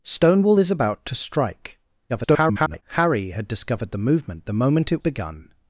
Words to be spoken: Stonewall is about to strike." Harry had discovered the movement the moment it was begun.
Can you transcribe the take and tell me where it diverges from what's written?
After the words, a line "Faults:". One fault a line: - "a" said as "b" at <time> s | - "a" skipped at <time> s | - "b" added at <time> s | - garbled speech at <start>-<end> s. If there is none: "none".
Stonewall is about to strike." [garbled] Harry had discovered the movement the moment it begun.
Faults:
- garbled speech at 2.1-2.8 s
- "was" skipped at 5.0 s